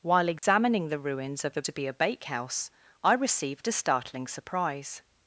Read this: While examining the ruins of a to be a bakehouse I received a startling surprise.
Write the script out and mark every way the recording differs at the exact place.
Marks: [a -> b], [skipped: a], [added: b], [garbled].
While examining the ruins of a to be a bakehouse I received a startling surprise.